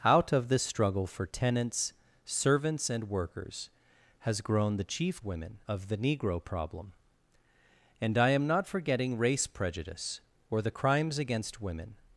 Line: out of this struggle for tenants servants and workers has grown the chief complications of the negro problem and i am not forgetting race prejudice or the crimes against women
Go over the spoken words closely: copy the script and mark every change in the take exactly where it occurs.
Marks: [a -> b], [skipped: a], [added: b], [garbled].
out of this struggle for tenants servants and workers has grown the chief [complications -> women] of the negro problem and i am not forgetting race prejudice or the crimes against women